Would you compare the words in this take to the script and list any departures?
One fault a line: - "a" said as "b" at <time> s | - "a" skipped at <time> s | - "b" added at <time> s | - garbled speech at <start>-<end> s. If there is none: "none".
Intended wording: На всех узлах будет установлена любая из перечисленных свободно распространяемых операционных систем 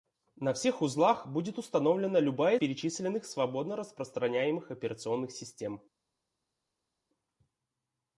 - "из" skipped at 2.6 s